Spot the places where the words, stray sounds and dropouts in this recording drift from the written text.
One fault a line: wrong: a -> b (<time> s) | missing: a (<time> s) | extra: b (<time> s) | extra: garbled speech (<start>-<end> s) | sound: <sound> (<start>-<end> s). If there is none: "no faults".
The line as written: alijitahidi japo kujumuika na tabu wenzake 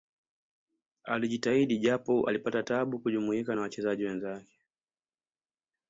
extra: alipata tabu (2.3 s)
wrong: tabu -> wachezaji (3.6 s)